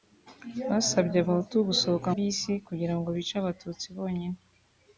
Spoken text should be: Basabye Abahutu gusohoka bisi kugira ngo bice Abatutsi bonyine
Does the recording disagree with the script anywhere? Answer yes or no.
no